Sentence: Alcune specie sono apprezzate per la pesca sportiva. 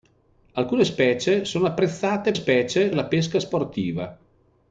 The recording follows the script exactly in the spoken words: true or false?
false